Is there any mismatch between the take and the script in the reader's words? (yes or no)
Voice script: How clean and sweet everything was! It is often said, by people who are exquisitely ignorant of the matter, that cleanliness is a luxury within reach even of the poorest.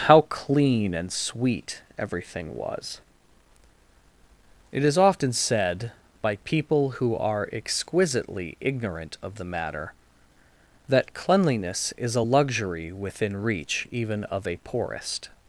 yes